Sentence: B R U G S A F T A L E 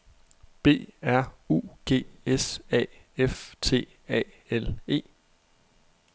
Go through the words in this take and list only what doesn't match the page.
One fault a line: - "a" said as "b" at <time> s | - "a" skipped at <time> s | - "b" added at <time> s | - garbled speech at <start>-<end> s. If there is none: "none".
none